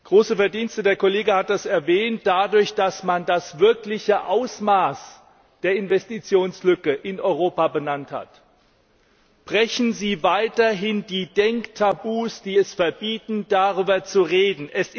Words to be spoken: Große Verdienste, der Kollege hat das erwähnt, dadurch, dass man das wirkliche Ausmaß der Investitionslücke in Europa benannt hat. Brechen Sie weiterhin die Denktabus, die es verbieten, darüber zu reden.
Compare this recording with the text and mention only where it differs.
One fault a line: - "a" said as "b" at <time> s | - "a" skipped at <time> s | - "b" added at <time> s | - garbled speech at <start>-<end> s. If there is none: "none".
none